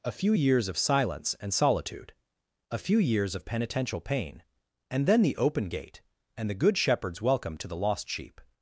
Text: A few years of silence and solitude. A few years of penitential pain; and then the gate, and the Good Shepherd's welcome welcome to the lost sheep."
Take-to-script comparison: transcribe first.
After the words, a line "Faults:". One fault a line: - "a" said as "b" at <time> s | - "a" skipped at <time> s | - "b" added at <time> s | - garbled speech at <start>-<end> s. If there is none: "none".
A few years of silence and solitude. A few years of penitential pain; and then the open gate, and the Good Shepherd's welcome to the lost sheep."
Faults:
- "open" added at 5.3 s
- "welcome" skipped at 7.6 s